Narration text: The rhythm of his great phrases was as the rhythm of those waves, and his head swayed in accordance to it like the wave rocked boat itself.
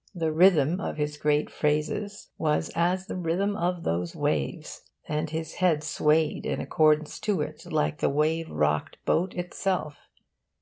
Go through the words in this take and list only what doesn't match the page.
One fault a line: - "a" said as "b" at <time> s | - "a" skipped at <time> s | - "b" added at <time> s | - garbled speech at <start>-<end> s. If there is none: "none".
none